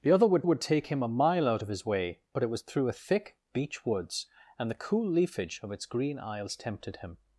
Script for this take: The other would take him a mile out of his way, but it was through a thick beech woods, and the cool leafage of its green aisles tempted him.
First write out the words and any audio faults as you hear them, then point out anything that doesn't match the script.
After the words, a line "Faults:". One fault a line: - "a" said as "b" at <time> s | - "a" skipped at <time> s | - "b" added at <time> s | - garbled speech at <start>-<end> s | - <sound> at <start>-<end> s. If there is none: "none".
The other would would take him a mile out of his way, but it was through a thick beech woods, and the cool leafage of its green aisles tempted him.
Faults:
- "would" added at 0.4 s